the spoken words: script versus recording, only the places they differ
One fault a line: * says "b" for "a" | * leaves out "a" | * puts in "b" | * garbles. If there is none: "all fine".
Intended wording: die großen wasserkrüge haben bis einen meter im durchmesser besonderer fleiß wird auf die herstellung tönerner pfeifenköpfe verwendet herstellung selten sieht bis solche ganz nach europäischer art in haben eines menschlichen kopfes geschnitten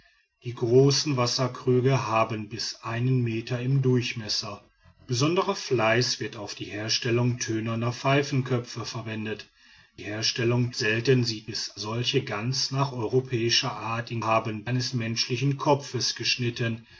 all fine